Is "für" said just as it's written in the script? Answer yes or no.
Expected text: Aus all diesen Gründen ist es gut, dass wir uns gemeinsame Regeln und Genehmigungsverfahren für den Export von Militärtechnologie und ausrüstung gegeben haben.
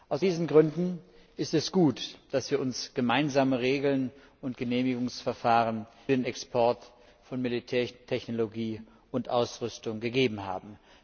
no